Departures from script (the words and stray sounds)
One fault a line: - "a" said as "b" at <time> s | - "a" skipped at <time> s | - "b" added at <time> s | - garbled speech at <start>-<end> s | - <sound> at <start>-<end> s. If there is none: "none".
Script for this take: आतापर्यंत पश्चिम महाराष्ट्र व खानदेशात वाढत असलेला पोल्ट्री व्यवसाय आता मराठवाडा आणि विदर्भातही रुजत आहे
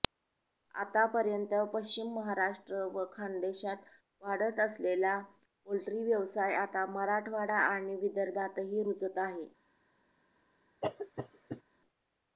- cough at 10.8-11.6 s